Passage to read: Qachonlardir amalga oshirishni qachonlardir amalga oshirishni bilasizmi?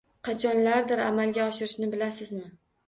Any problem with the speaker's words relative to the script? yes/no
yes